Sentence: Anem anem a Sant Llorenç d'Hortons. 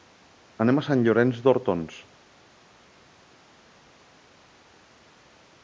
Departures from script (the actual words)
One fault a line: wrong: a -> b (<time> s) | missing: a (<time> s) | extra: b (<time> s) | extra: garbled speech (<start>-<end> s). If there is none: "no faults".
missing: anem (0.8 s)